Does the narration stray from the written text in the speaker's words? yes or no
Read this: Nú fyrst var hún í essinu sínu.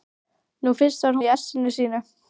yes